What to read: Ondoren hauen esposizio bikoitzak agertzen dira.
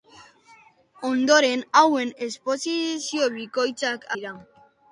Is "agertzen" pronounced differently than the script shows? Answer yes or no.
yes